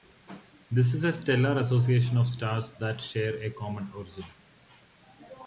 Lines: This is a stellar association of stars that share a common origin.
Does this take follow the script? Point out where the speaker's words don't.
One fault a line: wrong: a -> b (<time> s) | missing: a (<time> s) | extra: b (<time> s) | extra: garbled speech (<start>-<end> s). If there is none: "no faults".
no faults